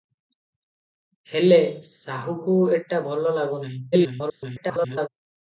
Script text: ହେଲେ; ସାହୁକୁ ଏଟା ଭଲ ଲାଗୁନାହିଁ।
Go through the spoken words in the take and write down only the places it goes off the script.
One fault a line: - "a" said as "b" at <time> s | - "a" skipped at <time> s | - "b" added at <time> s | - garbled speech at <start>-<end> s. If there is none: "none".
- garbled speech at 3.9-5.1 s